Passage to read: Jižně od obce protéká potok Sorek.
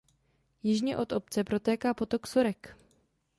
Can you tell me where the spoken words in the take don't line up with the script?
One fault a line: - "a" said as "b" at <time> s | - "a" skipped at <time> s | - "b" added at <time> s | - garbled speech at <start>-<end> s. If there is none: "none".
none